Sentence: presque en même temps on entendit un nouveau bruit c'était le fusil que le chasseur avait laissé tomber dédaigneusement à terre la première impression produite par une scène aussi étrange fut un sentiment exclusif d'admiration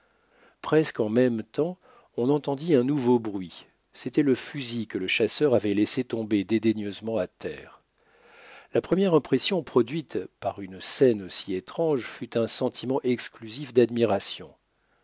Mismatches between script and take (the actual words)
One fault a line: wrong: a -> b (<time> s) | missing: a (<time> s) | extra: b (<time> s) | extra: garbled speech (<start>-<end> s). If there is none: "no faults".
no faults